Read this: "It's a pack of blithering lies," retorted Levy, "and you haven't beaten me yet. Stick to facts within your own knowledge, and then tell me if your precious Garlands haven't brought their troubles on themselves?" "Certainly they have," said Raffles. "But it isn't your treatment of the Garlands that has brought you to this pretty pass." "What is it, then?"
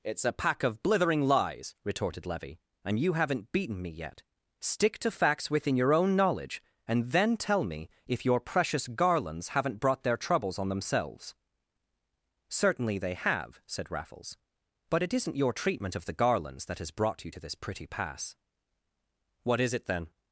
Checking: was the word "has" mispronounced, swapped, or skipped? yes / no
no